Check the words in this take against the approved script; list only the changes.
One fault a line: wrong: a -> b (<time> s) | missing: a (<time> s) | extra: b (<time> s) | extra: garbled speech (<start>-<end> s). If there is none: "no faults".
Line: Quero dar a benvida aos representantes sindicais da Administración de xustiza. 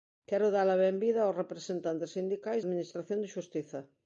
missing: da (2.6 s)